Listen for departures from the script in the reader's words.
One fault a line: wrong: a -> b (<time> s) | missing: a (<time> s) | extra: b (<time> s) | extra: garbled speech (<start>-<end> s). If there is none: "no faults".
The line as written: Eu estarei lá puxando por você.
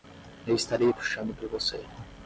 missing: lá (0.9 s)